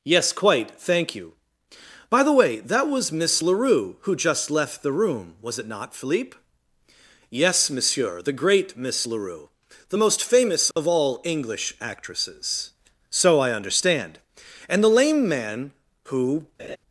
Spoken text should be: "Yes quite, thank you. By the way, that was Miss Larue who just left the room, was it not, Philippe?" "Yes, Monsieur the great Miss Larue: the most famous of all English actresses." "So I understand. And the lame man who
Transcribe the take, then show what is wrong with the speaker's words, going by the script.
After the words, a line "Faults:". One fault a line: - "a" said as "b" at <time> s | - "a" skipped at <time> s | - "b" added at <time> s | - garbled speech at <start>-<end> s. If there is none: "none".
"Yes quite, thank you. By the way, that was Miss Larue who just left the room, was it not, Philippe?" "Yes, Monsieur the great Miss Larue: the most famous of all English actresses." "So I understand. And the lame man who
Faults:
none